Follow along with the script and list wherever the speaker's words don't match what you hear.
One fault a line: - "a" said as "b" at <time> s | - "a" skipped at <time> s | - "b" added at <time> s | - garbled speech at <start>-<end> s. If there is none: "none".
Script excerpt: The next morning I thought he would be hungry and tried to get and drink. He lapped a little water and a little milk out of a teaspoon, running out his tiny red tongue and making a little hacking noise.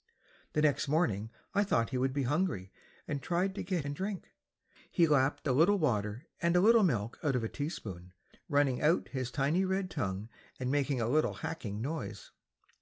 none